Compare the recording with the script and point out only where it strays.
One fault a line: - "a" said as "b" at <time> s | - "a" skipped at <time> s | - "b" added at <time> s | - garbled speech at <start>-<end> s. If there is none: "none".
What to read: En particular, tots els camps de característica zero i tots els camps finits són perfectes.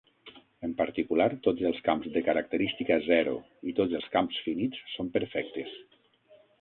none